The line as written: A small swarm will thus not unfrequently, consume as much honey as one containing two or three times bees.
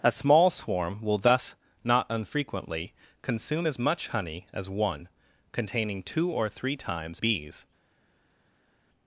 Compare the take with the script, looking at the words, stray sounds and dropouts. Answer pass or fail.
pass